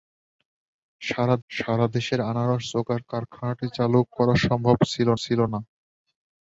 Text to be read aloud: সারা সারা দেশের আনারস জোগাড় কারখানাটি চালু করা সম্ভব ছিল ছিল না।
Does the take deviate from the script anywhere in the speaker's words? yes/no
no